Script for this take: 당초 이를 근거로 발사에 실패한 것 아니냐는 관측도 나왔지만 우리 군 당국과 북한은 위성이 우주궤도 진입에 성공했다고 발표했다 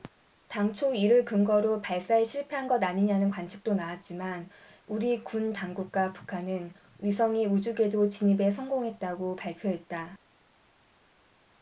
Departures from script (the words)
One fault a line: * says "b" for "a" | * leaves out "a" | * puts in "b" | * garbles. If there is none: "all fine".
all fine